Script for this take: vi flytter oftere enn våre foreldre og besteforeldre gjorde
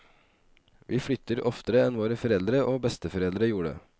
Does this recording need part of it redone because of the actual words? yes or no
no